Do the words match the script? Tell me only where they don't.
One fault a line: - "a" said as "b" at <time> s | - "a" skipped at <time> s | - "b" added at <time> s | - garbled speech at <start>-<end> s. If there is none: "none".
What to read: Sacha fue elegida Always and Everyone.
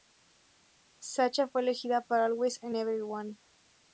- "para" added at 2.0 s